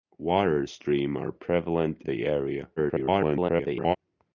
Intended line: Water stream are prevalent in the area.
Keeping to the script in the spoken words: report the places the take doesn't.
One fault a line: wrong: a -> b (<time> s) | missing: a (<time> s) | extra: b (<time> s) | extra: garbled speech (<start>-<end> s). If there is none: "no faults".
missing: in (2.0 s)
extra: garbled speech (2.8-4.0 s)